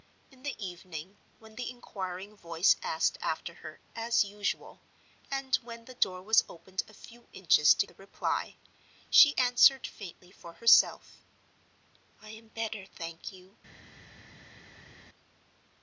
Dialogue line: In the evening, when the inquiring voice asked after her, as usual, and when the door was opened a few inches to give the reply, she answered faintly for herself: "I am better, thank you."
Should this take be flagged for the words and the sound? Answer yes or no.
yes